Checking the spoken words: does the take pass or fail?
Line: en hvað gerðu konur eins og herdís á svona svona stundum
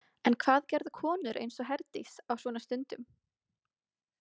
fail